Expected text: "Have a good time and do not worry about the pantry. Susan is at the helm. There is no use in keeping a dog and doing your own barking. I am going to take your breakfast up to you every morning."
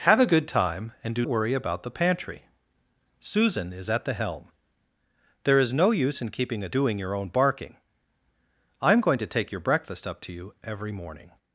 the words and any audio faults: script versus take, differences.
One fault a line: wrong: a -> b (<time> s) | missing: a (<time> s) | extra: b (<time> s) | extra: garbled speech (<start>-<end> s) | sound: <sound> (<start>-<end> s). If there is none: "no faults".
missing: not (1.3 s)
missing: dog and (6.7 s)